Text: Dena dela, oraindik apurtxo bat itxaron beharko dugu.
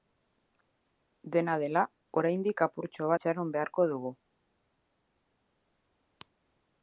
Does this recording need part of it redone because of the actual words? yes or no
yes